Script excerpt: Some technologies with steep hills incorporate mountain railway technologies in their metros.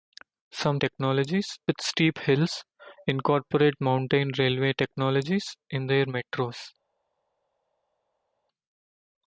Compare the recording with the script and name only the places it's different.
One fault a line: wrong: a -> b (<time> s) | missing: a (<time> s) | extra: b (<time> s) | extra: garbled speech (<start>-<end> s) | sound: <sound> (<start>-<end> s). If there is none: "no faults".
no faults